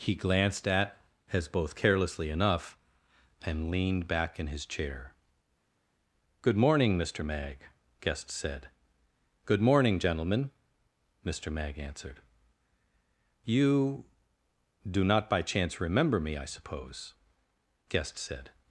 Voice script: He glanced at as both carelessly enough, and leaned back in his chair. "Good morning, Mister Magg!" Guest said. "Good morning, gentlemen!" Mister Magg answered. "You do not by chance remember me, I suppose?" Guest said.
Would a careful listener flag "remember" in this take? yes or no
no